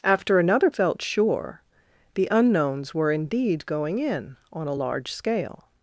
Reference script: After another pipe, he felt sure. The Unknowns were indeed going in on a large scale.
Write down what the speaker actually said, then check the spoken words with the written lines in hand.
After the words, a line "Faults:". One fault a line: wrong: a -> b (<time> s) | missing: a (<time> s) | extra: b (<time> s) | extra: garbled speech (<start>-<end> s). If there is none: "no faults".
After another felt sure. The Unknowns were indeed going in on a large scale.
Faults:
missing: pipe he (0.7 s)